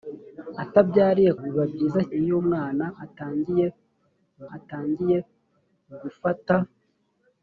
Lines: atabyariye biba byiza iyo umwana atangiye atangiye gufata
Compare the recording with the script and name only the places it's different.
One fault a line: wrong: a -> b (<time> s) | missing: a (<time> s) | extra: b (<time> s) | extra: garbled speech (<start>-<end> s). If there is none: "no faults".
no faults